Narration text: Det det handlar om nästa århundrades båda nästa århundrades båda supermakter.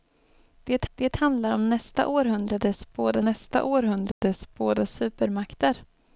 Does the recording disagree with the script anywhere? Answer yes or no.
no